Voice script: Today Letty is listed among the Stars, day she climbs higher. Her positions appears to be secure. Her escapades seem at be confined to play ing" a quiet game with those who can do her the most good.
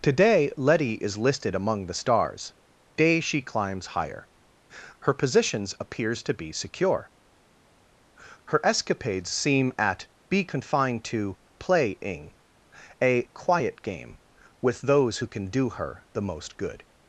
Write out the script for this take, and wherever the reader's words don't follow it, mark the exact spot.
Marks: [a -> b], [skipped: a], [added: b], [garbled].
Today Letty is listed among the Stars, day she climbs higher. Her positions appears to be secure. Her escapades seem at be confined to play ing" a quiet game with those who can do her the most good.